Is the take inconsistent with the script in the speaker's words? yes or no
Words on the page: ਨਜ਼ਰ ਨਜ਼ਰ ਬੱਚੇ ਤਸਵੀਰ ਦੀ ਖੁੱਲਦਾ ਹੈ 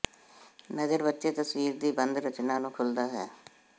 yes